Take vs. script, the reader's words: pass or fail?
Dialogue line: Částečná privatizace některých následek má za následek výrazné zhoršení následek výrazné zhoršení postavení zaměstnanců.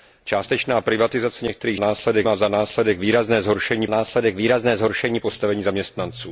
pass